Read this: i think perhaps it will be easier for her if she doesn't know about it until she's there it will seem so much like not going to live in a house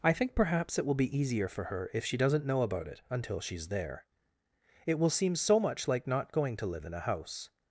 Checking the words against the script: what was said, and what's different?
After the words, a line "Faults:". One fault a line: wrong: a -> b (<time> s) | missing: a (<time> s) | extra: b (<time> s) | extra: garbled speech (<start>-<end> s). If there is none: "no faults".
i think perhaps it will be easier for her if she doesn't know about it until she's there it will seem so much like not going to live in a house
Faults:
no faults